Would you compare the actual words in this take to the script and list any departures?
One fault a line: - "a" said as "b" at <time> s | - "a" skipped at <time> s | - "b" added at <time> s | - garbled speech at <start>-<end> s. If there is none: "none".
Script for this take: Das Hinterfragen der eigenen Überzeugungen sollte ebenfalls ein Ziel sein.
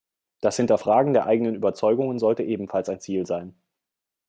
none